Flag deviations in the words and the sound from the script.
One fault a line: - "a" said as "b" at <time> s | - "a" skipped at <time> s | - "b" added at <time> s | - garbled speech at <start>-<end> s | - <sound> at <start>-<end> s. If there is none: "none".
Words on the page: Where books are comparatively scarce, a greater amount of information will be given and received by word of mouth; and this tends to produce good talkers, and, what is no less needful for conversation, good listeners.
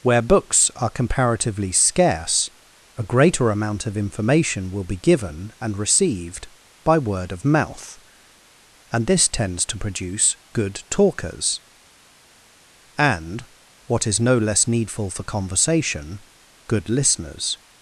none